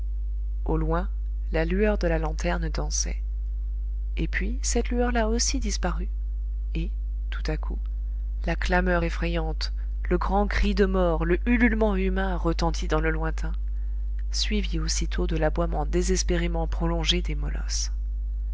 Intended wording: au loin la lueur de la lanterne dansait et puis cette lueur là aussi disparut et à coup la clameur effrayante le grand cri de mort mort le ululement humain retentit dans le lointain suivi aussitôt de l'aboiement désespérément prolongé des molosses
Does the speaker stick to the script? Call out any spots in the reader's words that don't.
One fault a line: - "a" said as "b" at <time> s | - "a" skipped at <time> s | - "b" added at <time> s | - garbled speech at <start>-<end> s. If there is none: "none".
- "tout" added at 7.3 s
- "mort" skipped at 11.2 s